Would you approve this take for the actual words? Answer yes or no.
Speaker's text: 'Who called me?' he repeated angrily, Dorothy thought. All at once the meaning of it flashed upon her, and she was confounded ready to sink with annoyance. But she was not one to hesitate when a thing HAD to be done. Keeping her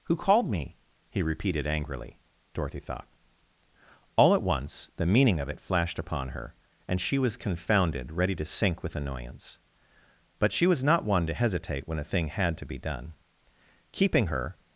yes